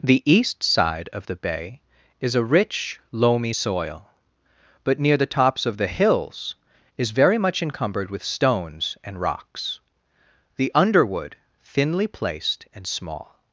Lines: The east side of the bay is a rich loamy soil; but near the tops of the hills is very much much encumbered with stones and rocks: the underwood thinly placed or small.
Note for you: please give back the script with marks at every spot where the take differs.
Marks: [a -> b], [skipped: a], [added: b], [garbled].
The east side of the bay is a rich loamy soil; but near the tops of the hills is very much [skipped: much] encumbered with stones and rocks: the underwood thinly placed [or -> and] small.